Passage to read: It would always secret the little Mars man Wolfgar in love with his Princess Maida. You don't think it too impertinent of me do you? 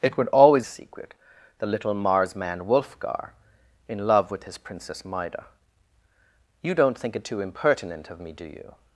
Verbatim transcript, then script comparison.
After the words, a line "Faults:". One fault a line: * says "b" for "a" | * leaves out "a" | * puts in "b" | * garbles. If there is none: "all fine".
It would always secret the little Mars man Wolfgar in love with his Princess Maida. You don't think it too impertinent of me do you?
Faults:
all fine